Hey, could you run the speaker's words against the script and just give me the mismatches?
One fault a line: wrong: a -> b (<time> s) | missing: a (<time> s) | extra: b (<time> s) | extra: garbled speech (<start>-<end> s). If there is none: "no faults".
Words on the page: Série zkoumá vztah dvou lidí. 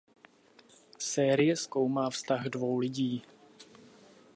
no faults